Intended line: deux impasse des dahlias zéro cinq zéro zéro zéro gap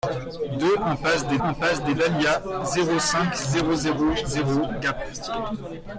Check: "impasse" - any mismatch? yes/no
no